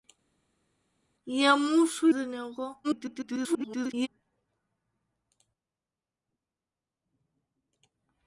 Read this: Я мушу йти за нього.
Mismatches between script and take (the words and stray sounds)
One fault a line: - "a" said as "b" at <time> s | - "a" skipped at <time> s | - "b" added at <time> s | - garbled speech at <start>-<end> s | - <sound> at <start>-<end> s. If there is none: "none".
- "йти" skipped at 2.1 s
- garbled speech at 2.8-4.1 s